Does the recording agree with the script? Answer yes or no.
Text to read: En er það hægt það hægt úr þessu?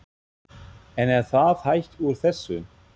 no